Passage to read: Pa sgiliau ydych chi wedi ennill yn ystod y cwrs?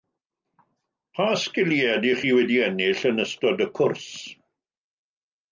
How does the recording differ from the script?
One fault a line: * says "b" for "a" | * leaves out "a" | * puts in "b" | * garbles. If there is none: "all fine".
all fine